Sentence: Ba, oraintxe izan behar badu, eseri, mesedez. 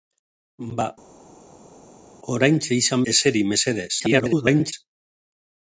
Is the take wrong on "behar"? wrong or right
wrong